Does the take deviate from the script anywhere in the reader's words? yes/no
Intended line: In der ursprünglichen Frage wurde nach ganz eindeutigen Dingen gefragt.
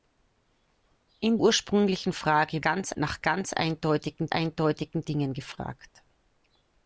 yes